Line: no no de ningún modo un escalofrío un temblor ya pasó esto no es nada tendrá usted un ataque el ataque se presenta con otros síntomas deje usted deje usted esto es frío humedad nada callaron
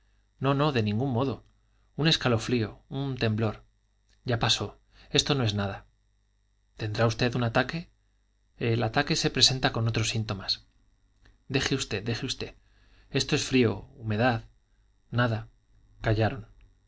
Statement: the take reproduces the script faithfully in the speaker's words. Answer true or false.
true